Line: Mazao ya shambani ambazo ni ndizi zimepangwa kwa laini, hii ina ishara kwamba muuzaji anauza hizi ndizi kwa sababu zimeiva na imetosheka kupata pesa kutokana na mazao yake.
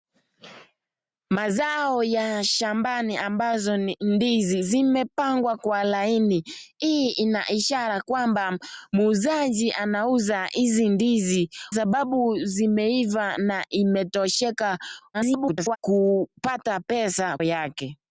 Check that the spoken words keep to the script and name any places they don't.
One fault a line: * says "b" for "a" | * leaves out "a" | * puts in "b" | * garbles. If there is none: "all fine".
* leaves out "kwa"
* garbles
* leaves out "kutokana na mazao"